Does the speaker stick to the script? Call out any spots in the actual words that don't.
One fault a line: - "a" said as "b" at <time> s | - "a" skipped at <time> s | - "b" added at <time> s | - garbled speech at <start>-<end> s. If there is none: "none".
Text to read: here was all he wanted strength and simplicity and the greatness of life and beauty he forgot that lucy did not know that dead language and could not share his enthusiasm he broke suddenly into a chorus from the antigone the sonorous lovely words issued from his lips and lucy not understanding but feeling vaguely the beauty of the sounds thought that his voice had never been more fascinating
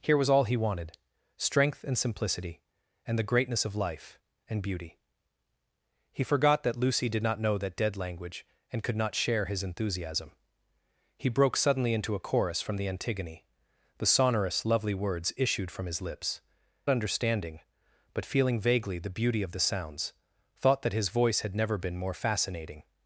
- "and lucy not" skipped at 16.4 s